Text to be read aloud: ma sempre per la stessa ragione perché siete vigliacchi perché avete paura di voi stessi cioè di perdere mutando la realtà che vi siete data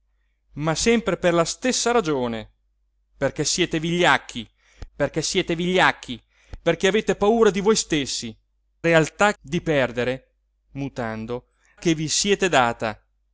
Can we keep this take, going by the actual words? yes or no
no